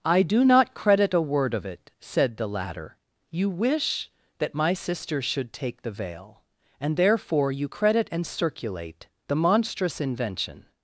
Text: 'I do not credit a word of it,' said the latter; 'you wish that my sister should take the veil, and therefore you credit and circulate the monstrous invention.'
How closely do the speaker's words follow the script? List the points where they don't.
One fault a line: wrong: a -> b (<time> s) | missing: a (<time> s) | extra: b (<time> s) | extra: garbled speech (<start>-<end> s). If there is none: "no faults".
no faults